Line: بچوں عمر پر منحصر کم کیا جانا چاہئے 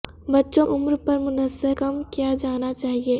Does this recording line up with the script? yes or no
yes